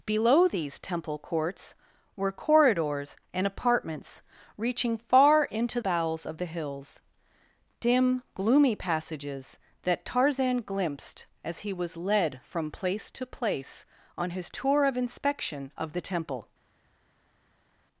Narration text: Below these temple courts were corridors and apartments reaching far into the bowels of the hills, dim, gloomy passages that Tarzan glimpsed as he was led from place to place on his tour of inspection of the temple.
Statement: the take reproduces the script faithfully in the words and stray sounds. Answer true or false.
false